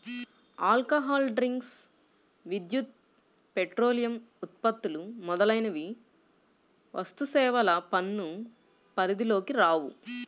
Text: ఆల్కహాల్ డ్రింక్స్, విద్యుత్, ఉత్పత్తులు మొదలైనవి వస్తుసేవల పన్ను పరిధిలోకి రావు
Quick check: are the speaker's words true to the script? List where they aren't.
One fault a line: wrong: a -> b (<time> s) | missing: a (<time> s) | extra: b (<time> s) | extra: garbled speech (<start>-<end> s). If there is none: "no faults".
extra: పెట్రోలియం (3.5 s)